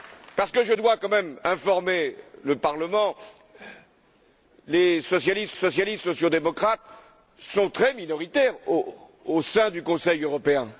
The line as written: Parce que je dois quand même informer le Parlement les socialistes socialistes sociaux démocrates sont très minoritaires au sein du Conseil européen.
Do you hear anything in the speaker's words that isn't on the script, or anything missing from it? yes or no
no